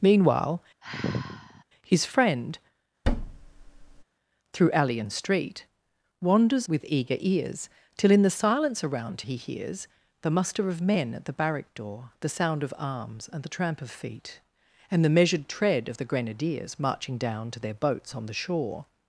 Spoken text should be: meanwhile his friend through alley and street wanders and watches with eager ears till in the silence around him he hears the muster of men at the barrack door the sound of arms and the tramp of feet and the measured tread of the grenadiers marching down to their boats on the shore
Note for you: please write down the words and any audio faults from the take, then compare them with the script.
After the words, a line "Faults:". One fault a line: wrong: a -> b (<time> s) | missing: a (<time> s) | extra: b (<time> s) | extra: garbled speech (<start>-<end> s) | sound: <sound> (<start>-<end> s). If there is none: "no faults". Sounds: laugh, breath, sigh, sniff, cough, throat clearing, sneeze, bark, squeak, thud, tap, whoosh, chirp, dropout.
meanwhile his friend through alley and street wanders with eager ears till in the silence around he hears the muster of men at the barrack door the sound of arms and the tramp of feet and the measured tread of the grenadiers marching down to their boats on the shore
Faults:
sound: sigh (0.8-1.6 s)
sound: thud (3.0-4.0 s)
missing: and watches (6.7 s)
missing: him (9.2 s)